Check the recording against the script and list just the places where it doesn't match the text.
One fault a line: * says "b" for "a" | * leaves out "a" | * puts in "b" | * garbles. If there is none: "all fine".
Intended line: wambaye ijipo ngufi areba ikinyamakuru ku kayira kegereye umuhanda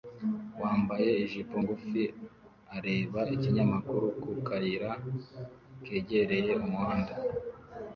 all fine